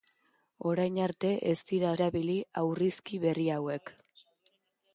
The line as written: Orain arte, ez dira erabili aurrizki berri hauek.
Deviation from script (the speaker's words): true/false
false